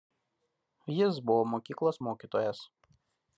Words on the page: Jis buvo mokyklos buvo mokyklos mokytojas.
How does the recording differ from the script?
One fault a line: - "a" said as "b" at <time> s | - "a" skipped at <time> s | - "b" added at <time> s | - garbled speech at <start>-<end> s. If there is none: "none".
- "buvo mokyklos" skipped at 2.0 s